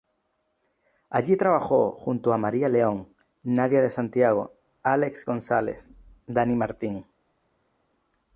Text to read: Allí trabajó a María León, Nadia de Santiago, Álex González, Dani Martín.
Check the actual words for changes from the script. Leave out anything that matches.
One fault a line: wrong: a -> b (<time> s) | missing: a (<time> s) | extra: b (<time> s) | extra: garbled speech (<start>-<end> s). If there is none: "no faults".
extra: junto (1.9 s)